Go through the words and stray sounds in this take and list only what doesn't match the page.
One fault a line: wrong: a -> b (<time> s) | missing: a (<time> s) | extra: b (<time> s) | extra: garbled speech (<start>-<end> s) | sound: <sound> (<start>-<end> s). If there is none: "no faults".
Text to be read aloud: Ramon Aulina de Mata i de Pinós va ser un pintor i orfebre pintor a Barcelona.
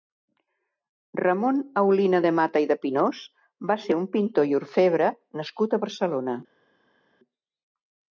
wrong: pintor -> nascut (5.4 s)